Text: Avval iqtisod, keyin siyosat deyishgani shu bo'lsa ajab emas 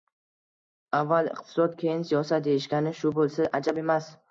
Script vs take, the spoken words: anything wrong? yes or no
no